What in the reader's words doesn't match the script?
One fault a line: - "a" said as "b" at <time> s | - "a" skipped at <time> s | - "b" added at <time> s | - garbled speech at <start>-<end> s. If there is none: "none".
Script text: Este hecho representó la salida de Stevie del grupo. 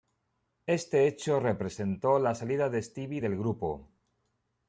none